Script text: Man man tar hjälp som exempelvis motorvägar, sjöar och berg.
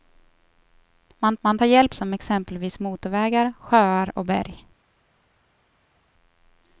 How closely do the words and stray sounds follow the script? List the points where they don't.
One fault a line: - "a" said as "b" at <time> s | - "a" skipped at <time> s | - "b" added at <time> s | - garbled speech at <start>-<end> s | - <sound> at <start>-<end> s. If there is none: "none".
none